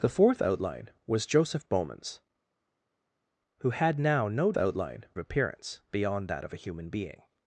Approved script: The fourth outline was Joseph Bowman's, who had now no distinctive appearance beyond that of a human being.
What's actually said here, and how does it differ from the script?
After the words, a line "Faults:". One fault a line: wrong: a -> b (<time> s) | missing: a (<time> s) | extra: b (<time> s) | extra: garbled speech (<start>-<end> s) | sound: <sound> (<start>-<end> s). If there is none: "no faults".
The fourth outline was Joseph Bowman's, who had now no outline appearance beyond that of a human being.
Faults:
wrong: distinctive -> outline (4.6 s)